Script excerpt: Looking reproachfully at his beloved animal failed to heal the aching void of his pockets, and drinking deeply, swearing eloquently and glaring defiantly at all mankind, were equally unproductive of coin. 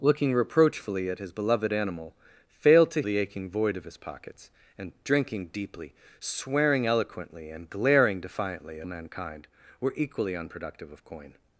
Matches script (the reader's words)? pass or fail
fail